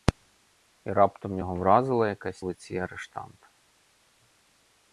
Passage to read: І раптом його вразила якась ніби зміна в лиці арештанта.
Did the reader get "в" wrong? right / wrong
wrong